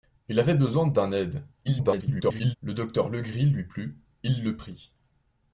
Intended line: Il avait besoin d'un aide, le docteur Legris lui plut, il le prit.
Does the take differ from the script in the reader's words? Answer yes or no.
yes